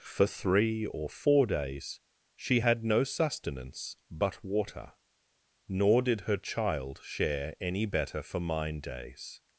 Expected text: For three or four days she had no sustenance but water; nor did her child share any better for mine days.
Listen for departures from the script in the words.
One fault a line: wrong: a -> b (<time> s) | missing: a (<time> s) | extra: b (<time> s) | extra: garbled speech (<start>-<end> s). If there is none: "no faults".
no faults